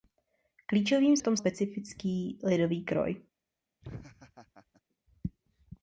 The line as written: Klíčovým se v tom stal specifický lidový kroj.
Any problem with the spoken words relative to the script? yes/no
yes